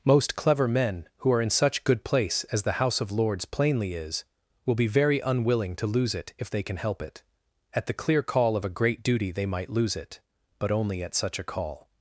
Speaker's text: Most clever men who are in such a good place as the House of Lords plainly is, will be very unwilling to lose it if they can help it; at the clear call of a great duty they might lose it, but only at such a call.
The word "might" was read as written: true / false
true